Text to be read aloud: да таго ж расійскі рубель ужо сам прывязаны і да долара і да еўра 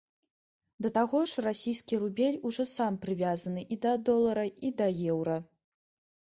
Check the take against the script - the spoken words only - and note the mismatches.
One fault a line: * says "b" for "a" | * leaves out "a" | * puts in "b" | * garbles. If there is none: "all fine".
all fine